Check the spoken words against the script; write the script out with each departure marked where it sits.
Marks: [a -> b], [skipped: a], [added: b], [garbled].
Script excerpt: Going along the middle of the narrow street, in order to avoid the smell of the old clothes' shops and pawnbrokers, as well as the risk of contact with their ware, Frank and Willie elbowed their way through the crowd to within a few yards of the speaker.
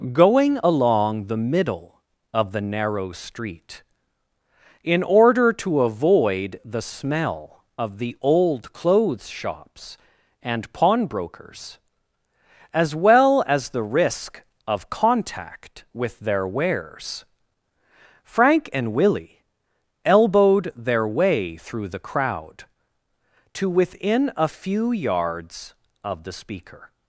Going along the middle of the narrow street, in order to avoid the smell of the old clothes' shops and pawnbrokers, as well as the risk of contact with their [ware, -> wares] Frank and Willie elbowed their way through the crowd to within a few yards of the speaker.